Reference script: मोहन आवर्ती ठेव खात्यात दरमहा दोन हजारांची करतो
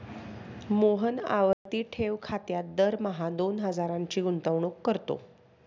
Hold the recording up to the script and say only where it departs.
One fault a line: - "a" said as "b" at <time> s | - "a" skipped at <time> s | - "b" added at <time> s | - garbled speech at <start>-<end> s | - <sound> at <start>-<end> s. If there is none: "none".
- dropout at 1.5-1.7 s
- "गुंतवणूक" added at 4.2 s